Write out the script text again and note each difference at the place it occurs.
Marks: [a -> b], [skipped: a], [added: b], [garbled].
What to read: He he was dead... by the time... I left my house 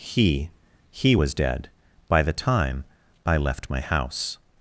He he was dead... by the time... I left my house